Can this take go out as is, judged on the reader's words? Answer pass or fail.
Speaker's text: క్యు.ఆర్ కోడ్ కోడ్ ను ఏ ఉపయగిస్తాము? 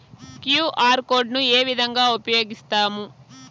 fail